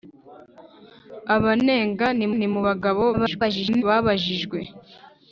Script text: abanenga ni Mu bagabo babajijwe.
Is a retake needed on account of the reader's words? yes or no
yes